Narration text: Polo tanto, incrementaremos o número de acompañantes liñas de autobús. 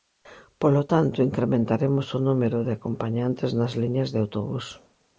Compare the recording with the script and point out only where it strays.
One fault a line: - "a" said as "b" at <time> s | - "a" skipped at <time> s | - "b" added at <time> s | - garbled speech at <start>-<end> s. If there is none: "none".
- "nas" added at 3.6 s